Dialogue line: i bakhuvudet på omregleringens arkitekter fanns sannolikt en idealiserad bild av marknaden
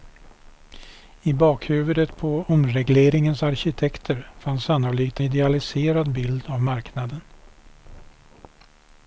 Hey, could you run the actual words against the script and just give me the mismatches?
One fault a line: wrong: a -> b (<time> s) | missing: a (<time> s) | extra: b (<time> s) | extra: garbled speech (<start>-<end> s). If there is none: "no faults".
missing: en (5.2 s)